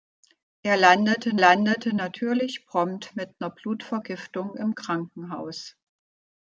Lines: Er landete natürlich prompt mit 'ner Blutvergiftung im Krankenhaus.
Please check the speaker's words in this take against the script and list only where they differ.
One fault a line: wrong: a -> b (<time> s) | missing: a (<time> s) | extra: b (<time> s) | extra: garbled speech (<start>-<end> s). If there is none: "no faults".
extra: landete (1.4 s)